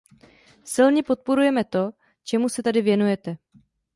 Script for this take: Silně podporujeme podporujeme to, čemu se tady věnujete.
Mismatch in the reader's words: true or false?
true